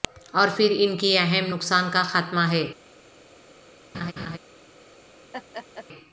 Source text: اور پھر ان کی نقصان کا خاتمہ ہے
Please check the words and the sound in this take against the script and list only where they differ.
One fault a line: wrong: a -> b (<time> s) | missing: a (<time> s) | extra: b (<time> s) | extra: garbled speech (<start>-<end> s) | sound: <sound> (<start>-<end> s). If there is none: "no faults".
extra: اہم (1.2 s)
sound: laugh (3.9-4.4 s)
sound: laugh (5.3-5.9 s)